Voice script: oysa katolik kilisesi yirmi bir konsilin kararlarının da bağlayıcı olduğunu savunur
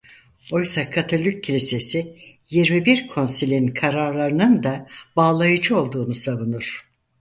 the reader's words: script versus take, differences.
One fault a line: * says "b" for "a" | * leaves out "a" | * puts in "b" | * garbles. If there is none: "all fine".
all fine